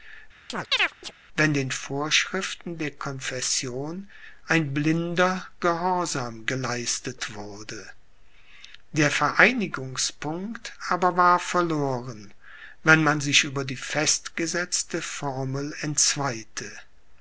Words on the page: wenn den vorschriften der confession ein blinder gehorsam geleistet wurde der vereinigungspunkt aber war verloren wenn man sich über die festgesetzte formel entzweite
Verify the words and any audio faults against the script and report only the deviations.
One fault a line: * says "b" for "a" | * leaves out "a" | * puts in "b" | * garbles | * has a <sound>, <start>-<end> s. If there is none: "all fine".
* has a chirp, 0.5-1.1 s